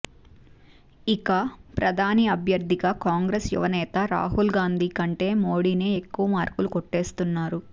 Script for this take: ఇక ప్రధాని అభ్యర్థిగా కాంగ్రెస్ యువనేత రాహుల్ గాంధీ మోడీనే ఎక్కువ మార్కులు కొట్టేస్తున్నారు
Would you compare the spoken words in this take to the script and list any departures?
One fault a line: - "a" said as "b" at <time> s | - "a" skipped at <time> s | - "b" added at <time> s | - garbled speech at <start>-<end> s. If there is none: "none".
- "కంటే" added at 5.0 s